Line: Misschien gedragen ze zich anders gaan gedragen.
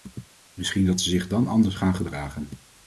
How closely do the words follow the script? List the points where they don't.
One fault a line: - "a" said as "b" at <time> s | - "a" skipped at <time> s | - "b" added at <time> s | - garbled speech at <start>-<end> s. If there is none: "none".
- "gedragen" said as "dat" at 0.8 s
- "dan" added at 1.3 s